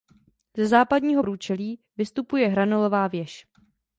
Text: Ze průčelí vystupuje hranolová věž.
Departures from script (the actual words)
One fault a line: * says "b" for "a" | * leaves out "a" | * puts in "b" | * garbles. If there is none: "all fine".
* puts in "západního"